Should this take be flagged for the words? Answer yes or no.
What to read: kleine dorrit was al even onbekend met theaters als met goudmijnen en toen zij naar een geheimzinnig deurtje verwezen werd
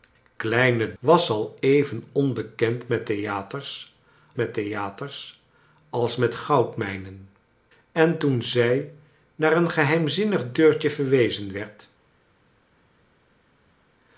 yes